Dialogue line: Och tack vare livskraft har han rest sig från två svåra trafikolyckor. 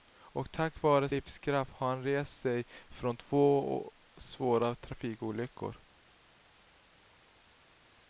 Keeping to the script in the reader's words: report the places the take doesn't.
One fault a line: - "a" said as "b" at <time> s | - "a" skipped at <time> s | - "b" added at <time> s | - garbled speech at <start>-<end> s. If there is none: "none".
none